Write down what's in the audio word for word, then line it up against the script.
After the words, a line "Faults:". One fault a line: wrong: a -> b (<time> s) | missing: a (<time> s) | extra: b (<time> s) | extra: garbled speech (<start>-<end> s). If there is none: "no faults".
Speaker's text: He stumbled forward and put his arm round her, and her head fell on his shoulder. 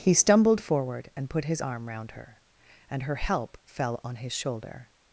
He stumbled forward and put his arm round her, and her help fell on his shoulder.
Faults:
wrong: head -> help (3.2 s)